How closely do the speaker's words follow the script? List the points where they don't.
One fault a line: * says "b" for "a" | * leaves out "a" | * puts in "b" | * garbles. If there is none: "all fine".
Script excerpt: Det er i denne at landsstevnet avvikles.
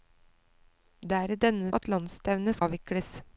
all fine